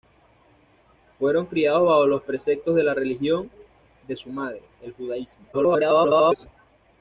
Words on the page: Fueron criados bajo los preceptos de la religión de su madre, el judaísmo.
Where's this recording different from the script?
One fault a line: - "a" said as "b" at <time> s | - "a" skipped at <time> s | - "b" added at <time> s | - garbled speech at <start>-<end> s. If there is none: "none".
- garbled speech at 5.5-6.5 s